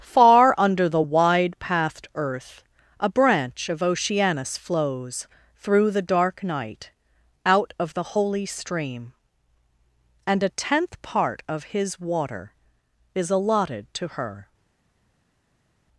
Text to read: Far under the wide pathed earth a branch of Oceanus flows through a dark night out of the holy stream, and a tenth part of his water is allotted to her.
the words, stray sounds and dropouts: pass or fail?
fail